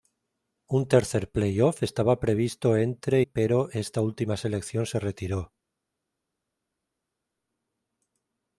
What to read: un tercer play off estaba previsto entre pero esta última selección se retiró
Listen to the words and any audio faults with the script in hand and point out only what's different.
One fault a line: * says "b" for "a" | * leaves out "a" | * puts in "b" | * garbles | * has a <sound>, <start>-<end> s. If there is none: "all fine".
all fine